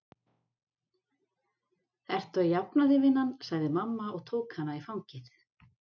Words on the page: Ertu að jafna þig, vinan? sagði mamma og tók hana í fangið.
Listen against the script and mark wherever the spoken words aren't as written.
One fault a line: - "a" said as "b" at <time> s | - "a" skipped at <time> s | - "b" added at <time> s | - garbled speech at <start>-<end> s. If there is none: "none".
none